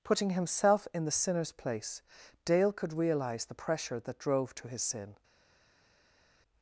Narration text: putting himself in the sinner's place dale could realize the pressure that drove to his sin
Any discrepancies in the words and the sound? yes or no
no